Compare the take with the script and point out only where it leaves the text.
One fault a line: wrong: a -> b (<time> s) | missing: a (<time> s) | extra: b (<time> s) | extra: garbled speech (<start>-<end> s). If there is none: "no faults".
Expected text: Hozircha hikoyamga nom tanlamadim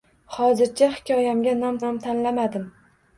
extra: nom (1.8 s)